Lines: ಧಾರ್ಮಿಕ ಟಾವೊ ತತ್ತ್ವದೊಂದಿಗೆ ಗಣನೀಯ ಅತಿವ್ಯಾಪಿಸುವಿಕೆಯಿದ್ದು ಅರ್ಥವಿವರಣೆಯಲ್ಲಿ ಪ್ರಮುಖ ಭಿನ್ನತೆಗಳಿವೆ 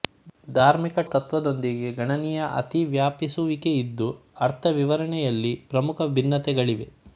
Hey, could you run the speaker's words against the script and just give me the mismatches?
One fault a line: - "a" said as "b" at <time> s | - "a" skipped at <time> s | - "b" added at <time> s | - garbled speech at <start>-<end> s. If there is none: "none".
- "ಟಾವೊ" skipped at 1.0 s